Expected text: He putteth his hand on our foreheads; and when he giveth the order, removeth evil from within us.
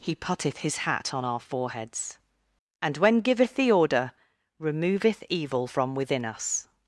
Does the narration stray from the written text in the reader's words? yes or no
yes